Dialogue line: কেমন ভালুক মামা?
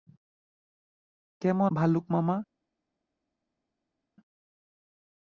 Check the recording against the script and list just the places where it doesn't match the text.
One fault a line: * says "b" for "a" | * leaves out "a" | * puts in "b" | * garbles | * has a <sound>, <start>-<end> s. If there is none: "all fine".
all fine